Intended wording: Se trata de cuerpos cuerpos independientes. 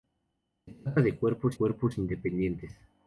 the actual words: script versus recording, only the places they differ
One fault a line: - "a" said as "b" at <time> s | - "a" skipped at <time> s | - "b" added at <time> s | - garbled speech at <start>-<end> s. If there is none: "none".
none